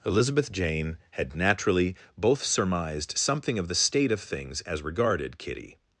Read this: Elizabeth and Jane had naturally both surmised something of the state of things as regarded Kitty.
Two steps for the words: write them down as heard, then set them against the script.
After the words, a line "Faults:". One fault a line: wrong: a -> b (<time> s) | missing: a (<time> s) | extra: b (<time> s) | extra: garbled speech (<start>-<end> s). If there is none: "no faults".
Elizabeth Jane had naturally both surmised something of the state of things as regarded Kitty.
Faults:
missing: and (0.5 s)